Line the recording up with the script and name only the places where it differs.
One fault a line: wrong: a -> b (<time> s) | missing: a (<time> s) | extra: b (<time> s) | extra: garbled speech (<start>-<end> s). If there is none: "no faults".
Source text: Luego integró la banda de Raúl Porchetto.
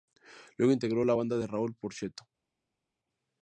no faults